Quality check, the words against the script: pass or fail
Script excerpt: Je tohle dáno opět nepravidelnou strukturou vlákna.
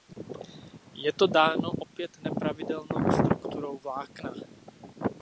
fail